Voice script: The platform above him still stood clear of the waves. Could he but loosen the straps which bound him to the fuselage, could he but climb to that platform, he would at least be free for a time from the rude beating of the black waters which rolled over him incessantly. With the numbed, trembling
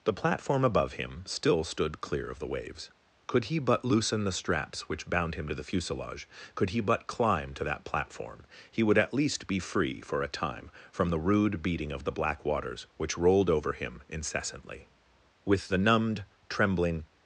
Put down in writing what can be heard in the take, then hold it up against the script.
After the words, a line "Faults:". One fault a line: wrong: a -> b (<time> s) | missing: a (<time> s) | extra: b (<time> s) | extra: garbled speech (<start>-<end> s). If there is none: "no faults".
The platform above him still stood clear of the waves. Could he but loosen the straps which bound him to the fuselage, could he but climb to that platform, he would at least be free for a time from the rude beating of the black waters which rolled over him incessantly. With the numbed, trembling
Faults:
no faults